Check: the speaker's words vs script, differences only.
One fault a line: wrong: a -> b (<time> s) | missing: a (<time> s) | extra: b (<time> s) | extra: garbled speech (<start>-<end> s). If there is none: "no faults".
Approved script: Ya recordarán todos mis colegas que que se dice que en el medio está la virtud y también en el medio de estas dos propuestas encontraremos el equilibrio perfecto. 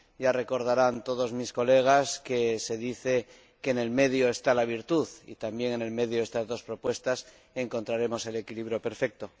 missing: que (2.6 s)